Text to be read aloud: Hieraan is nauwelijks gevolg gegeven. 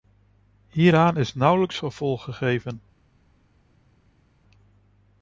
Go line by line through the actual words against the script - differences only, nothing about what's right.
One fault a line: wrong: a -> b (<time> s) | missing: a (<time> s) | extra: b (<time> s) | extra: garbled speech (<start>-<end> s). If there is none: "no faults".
no faults